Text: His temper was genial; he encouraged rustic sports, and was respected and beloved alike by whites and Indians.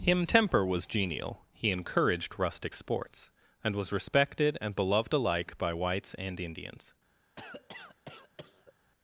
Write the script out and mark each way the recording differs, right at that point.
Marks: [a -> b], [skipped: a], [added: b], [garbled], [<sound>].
[His -> Him] temper was genial; he encouraged rustic sports, and was respected and beloved alike by whites and Indians. [cough]